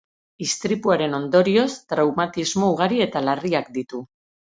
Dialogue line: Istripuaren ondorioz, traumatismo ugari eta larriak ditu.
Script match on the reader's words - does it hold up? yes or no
yes